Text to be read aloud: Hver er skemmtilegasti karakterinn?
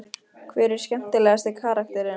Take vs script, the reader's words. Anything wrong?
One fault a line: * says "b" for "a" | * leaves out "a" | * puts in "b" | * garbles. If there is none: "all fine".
all fine